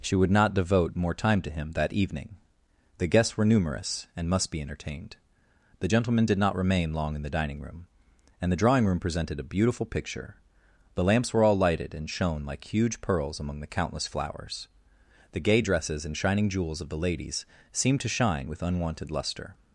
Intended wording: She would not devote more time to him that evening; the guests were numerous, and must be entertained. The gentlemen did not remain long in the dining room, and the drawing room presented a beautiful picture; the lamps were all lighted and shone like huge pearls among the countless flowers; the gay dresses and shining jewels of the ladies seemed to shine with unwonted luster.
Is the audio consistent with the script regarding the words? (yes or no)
yes